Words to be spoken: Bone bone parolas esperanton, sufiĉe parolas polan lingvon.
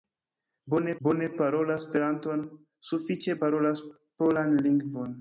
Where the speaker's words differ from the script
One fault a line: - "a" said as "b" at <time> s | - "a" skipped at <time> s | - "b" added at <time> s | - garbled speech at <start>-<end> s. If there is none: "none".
none